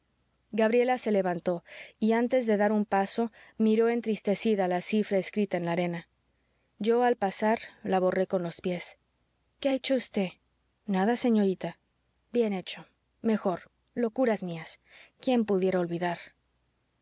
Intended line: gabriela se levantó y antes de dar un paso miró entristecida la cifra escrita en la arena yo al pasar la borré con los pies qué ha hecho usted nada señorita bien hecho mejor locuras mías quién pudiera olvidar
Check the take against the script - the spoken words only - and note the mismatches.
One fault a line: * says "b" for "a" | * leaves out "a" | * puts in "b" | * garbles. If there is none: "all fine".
all fine